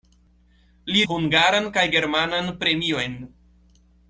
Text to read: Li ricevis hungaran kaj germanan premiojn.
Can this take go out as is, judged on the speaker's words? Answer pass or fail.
fail